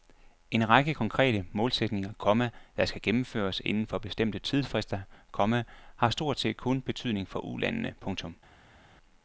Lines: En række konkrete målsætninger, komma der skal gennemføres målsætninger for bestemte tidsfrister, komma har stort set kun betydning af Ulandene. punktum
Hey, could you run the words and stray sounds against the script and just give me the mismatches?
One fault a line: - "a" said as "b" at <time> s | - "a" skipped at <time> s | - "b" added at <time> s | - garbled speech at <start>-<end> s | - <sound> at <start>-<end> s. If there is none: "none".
- "målsætninger" said as "inden" at 3.6 s
- "af" said as "for" at 7.3 s